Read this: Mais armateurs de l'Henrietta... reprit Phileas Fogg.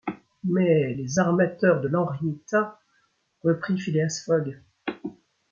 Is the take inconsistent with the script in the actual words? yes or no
yes